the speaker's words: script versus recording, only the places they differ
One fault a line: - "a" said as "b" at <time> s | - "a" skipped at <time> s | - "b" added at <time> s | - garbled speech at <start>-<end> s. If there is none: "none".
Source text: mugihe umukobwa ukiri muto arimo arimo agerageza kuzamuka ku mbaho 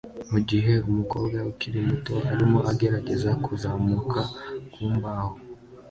- "arimo" skipped at 2.6 s